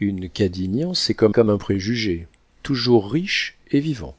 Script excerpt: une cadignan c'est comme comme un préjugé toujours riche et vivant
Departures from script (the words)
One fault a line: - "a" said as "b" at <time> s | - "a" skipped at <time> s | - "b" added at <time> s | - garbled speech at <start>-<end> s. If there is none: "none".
none